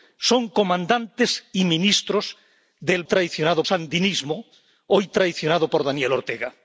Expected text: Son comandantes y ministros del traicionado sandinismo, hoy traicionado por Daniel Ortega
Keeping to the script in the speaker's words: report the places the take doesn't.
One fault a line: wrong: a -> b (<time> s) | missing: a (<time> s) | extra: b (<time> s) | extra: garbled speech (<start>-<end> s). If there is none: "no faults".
no faults